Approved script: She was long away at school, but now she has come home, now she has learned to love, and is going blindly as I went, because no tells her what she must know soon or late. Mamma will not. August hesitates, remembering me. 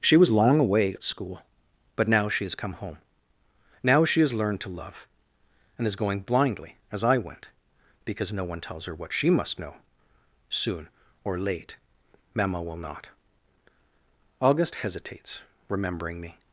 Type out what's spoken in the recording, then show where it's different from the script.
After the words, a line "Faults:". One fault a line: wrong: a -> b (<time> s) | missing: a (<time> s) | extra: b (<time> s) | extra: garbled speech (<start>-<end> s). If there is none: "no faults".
She was long away at school, but now she has come home, now she has learned to love, and is going blindly as I went, because no one tells her what she must know soon or late. Mamma will not. August hesitates, remembering me.
Faults:
extra: one (8.4 s)